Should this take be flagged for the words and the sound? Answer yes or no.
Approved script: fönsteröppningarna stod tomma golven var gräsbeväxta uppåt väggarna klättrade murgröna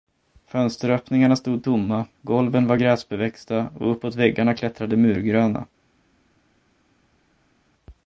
yes